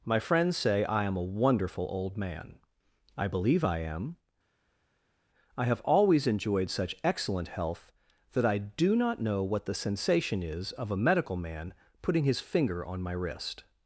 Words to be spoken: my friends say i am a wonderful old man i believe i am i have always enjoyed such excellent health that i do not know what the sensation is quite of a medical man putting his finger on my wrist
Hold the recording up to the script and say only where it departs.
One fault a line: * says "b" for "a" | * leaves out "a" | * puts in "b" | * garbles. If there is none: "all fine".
* leaves out "quite"